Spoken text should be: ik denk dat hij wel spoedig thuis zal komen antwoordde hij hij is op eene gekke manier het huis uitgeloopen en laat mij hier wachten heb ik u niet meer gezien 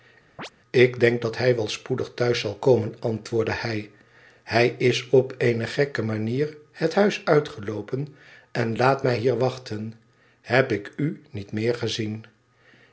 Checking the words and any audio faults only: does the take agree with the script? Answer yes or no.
no